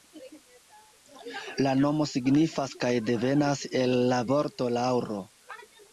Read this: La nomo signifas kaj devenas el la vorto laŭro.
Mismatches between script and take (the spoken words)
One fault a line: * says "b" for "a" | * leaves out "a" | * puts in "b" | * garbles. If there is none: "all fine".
all fine